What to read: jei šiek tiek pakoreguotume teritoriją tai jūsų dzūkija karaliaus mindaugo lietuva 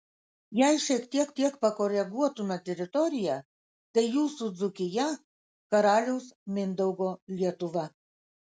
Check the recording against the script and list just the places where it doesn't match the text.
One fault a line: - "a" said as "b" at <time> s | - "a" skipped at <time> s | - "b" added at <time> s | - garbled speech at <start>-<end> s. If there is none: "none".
- "tiek" added at 1.4 s